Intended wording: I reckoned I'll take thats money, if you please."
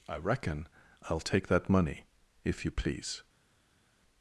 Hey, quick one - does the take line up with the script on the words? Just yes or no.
no